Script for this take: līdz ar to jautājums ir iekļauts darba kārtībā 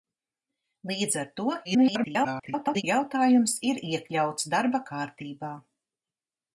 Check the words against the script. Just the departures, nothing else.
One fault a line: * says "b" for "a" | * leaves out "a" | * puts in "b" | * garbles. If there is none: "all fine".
* garbles